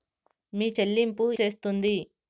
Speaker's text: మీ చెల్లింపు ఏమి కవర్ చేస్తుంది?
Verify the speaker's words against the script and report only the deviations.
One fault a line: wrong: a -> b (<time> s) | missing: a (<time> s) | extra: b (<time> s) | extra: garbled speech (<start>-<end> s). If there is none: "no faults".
missing: ఏమి కవర్ (1.3 s)